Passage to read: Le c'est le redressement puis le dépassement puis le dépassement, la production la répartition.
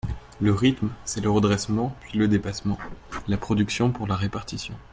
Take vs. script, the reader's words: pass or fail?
fail